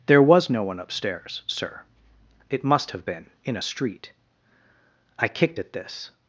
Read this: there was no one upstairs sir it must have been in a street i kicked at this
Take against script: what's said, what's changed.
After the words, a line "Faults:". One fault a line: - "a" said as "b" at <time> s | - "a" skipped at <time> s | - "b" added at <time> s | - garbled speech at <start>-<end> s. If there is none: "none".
there was no one upstairs sir it must have been in a street i kicked at this
Faults:
none